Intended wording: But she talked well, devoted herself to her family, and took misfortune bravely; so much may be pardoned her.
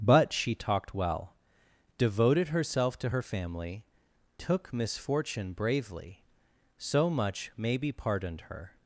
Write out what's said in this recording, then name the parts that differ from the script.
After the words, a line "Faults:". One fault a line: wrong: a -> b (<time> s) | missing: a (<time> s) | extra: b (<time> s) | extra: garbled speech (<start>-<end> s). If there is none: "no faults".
But she talked well, devoted herself to her family, took misfortune bravely; so much may be pardoned her.
Faults:
missing: and (3.8 s)